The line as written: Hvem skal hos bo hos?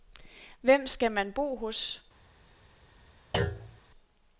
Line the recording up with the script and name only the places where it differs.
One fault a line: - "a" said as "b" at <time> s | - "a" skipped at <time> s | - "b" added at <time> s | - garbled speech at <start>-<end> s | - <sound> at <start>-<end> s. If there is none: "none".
- "hos" said as "man" at 1.1 s
- thud at 3.3-3.8 s